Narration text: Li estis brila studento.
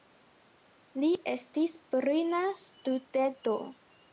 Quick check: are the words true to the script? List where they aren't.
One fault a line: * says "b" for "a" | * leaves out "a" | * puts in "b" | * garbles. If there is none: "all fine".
all fine